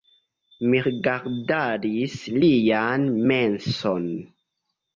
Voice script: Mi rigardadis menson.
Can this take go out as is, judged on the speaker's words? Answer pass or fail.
fail